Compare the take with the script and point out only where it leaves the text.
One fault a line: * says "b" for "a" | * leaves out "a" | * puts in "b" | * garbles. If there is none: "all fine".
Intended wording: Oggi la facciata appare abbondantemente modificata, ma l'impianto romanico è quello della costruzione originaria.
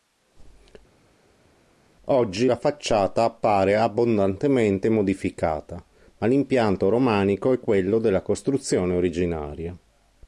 all fine